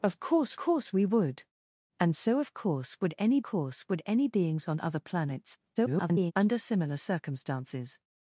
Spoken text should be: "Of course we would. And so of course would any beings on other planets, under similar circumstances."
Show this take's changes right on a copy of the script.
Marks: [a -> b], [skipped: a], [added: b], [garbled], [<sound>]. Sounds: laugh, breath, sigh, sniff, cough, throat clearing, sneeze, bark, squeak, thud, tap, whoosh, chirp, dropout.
"Of course [added: course] we would. And so of course would any [added: course would any] beings on other planets, [garbled] under similar circumstances."